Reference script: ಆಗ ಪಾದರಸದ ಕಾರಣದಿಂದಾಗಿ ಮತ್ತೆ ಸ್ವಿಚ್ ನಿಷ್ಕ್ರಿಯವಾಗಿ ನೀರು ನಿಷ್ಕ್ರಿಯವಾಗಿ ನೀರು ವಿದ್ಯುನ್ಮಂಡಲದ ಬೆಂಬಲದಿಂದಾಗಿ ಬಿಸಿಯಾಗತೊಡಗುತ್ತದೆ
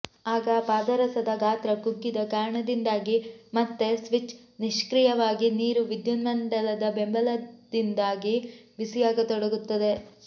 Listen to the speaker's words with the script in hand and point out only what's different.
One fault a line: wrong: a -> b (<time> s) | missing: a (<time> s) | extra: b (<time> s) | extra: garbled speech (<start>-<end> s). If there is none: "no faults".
extra: ಗಾತ್ರ ಕುಗ್ಗಿದ (1.4 s)
missing: ನಿಷ್ಕ್ರಿಯವಾಗಿ ನೀರು (5.8 s)